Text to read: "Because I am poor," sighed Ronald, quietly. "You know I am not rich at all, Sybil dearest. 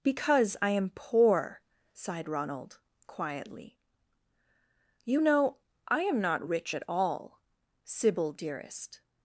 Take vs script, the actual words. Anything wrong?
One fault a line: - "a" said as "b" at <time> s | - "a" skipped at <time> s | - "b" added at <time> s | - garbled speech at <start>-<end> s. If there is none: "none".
none